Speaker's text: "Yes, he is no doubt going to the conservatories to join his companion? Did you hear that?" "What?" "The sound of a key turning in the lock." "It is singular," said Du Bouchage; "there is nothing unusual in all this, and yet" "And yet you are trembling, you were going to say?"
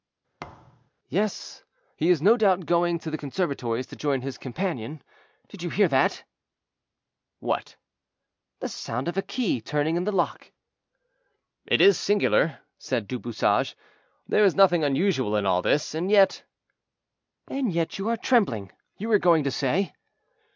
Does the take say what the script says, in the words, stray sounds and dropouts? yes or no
no